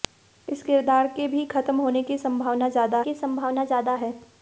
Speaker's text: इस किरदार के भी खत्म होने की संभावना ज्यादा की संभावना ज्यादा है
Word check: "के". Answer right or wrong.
right